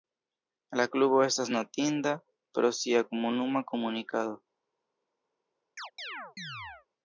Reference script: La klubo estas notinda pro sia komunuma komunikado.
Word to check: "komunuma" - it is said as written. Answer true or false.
true